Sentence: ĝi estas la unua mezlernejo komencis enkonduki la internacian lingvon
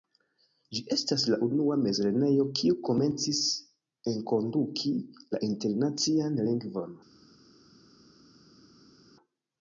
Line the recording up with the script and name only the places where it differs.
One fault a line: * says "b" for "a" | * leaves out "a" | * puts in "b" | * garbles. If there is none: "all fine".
* puts in "kiu"